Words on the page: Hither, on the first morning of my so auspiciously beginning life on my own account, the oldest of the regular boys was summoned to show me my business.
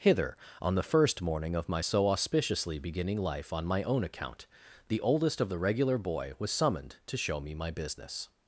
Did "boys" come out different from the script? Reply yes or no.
yes